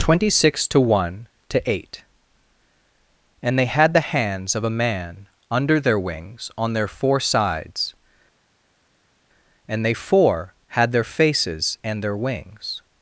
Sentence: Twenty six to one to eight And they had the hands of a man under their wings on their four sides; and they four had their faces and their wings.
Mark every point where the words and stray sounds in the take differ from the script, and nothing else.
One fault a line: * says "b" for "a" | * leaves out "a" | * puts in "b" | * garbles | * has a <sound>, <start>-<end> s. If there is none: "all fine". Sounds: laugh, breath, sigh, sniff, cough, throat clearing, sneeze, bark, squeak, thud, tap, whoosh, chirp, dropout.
all fine